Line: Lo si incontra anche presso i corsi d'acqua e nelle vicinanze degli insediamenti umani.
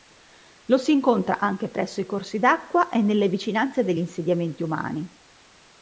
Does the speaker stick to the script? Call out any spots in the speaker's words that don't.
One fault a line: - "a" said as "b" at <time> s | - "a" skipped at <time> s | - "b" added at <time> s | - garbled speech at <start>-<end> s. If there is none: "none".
none